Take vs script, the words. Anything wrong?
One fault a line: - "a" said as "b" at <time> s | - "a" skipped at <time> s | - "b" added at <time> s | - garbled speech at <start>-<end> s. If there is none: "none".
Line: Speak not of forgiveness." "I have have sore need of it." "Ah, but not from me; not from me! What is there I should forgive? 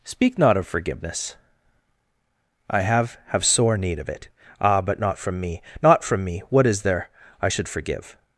none